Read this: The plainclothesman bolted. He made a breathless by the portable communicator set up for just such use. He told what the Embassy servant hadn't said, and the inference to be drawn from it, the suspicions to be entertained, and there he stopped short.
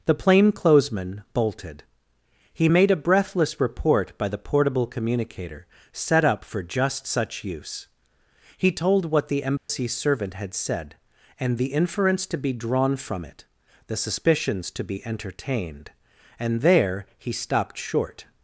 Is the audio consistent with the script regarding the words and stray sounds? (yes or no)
no